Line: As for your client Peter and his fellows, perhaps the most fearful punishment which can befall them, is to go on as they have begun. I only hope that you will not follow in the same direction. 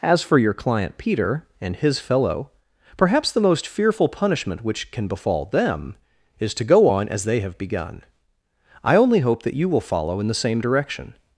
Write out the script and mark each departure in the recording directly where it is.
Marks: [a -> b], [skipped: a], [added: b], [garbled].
As for your client Peter and his [fellows, -> fellow] perhaps the most fearful punishment which can befall them, is to go on as they have begun. I only hope that you will [skipped: not] follow in the same direction.